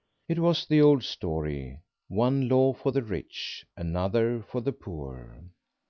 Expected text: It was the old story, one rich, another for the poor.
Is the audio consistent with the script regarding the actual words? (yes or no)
no